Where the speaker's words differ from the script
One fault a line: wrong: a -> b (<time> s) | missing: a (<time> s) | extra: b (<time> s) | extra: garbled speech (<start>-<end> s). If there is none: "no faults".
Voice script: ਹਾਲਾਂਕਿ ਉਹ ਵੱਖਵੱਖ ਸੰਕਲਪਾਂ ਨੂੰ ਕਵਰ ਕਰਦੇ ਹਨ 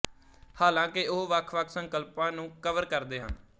no faults